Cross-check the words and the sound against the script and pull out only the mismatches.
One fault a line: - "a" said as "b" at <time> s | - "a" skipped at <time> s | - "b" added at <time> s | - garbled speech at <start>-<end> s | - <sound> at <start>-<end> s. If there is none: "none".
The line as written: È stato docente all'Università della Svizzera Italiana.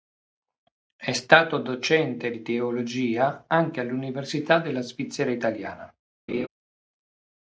- "di teologia anche" added at 2.3 s
- laugh at 6.3-6.5 s